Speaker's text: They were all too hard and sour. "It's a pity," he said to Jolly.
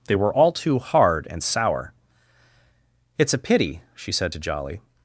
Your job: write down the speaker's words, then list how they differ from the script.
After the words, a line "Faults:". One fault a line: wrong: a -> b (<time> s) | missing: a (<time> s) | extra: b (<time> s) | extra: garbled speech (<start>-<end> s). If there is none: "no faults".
They were all too hard and sour. "It's a pity," she said to Jolly.
Faults:
wrong: he -> she (3.9 s)